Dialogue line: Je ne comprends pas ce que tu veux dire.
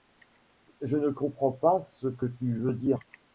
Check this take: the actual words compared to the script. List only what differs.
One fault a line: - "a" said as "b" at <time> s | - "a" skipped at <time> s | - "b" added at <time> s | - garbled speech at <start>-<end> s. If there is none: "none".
none